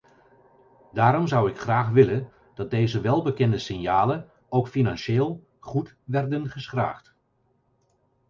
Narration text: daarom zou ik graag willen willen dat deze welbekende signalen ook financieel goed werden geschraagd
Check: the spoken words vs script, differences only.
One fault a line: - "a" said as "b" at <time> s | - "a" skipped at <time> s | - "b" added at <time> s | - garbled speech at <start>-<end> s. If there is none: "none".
- "willen" skipped at 2.3 s